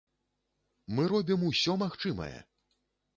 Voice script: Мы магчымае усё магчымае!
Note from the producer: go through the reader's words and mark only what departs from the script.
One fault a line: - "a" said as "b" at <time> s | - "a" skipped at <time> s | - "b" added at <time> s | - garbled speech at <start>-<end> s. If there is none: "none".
- "магчымае" said as "робім" at 1.1 s